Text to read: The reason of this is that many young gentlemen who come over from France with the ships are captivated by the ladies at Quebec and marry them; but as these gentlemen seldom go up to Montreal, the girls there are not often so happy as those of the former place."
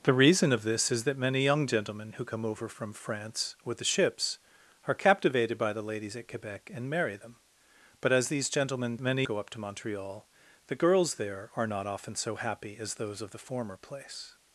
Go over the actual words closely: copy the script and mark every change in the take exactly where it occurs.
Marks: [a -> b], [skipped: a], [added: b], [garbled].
The reason of this is that many young gentlemen who come over from France with the ships are captivated by the ladies at Quebec and marry them; but as these gentlemen [seldom -> many] go up to Montreal, the girls there are not often so happy as those of the former place."